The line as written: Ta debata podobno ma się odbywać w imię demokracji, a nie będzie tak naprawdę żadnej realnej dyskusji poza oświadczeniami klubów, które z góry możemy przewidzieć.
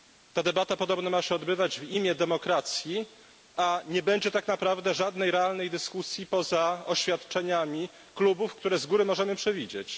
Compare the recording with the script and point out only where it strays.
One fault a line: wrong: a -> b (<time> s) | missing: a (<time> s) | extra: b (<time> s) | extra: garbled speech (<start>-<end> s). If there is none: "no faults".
no faults